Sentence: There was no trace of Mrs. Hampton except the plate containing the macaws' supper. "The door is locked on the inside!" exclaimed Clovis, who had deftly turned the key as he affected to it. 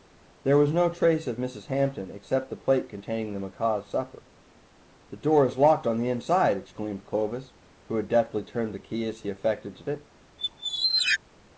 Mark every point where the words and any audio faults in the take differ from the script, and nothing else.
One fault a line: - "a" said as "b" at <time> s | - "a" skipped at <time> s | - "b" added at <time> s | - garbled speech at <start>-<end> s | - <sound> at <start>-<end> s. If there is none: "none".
- squeak at 10.4-11.2 s